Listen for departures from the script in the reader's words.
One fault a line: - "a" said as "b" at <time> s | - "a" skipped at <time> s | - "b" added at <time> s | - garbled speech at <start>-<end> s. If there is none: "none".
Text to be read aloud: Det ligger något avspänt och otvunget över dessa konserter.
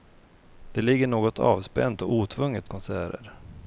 - "över dessa" skipped at 2.7 s